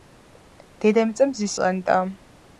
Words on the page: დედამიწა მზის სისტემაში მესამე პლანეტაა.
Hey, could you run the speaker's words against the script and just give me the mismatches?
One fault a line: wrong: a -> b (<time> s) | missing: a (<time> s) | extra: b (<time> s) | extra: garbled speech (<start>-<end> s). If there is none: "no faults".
missing: სისტემაში მესამე (1.5 s)